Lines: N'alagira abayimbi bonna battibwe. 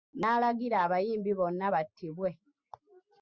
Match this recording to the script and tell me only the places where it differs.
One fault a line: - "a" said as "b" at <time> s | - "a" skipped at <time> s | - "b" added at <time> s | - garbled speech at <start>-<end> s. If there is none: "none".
none